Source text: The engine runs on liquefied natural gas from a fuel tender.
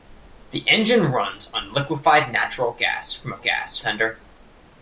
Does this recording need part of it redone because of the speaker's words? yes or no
yes